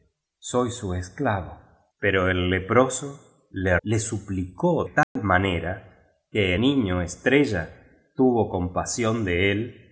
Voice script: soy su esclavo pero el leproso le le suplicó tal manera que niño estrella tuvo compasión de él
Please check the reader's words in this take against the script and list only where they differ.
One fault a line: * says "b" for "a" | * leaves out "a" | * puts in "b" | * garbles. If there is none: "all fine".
all fine